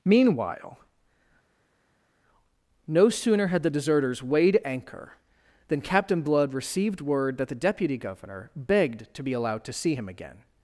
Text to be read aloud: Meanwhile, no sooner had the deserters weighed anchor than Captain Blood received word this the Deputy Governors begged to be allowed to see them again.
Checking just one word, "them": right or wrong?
wrong